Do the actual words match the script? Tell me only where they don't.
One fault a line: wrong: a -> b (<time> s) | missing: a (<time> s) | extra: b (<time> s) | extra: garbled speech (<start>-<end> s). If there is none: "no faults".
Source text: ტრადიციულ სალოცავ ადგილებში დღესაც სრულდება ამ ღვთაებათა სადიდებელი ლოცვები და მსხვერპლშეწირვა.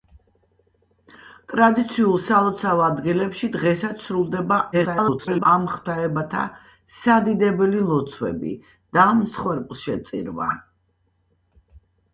extra: garbled speech (4.7-5.5 s)